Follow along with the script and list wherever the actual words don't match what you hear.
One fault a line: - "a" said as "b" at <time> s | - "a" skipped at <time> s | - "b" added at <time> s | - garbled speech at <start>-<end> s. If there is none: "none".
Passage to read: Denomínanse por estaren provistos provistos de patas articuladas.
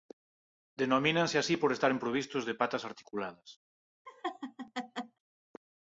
- "así" added at 1.4 s
- "provistos" skipped at 2.4 s